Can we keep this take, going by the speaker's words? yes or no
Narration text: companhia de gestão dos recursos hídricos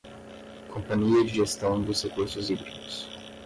yes